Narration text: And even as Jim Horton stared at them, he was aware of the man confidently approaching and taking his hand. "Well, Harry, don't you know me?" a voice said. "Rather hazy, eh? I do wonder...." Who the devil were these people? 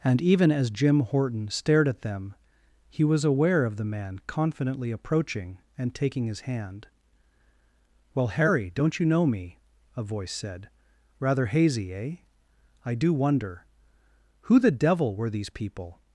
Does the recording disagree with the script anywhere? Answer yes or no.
no